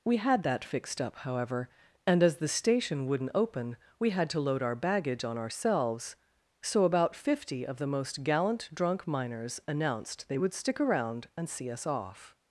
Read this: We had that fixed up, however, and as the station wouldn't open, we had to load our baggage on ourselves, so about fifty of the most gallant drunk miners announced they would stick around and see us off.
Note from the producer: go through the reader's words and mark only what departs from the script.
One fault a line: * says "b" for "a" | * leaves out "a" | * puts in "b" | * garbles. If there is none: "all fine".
all fine